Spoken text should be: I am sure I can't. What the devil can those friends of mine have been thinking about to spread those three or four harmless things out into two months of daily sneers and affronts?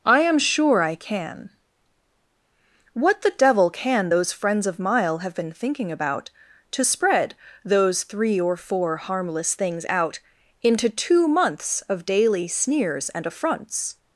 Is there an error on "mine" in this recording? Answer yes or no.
yes